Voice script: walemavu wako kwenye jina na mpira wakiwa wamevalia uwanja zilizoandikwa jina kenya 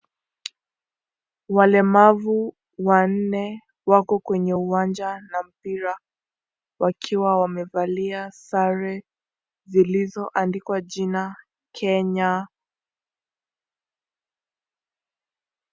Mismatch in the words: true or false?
true